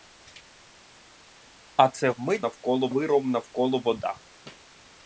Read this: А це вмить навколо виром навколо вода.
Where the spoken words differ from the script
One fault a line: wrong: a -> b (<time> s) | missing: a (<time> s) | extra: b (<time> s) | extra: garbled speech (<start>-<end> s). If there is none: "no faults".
no faults